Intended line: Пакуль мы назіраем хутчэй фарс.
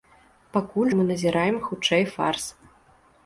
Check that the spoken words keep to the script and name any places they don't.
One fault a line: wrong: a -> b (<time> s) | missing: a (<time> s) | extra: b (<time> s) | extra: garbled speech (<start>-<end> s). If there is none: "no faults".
no faults